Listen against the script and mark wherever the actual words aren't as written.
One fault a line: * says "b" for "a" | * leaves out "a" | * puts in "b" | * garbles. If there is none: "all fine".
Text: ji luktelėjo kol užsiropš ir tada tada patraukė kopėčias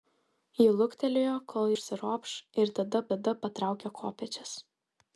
all fine